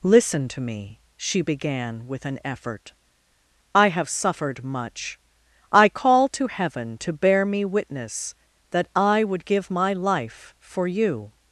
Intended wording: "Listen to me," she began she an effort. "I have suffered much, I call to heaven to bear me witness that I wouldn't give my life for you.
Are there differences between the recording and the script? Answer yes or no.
yes